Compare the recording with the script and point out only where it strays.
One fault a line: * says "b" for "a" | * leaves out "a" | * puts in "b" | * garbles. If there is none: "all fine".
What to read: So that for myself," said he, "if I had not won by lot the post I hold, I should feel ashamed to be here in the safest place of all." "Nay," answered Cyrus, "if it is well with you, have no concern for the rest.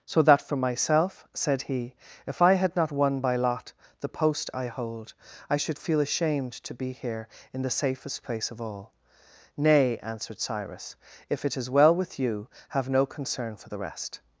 all fine